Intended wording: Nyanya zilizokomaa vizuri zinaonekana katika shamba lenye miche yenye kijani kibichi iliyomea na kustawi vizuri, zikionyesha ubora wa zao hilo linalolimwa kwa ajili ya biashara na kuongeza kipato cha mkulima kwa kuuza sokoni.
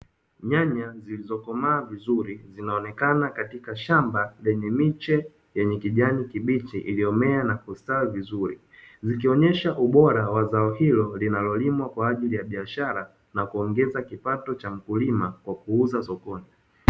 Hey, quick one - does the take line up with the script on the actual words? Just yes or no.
yes